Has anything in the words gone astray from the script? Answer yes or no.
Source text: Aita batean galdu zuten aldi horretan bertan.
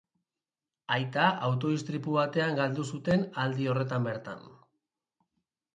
yes